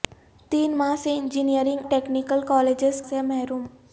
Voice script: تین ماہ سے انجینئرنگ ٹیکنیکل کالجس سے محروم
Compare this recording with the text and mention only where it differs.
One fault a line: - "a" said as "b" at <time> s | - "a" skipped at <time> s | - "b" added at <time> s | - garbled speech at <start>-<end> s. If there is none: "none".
none